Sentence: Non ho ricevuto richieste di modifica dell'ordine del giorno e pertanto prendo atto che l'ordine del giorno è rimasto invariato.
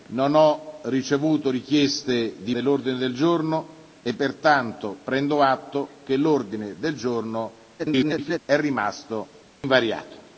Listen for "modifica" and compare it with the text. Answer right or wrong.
wrong